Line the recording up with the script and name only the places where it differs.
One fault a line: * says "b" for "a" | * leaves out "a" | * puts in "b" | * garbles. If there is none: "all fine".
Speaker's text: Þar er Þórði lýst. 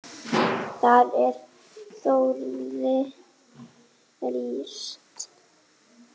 all fine